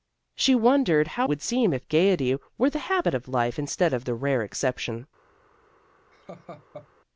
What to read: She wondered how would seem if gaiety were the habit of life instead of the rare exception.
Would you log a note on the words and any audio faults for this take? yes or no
yes